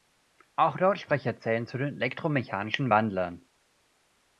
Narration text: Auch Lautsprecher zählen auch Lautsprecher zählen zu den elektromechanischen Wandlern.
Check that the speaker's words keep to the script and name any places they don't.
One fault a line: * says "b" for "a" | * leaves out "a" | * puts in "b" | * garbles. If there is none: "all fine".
* leaves out "auch Lautsprecher zählen"